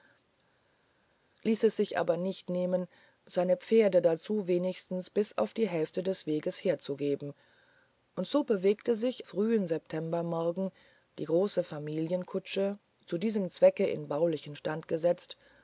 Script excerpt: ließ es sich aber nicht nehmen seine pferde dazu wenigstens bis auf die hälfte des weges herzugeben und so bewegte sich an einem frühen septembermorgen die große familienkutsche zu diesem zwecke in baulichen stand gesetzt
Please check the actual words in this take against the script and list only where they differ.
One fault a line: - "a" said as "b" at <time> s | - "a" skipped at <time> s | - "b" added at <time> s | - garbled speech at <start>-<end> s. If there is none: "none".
- "an einem" skipped at 9.2 s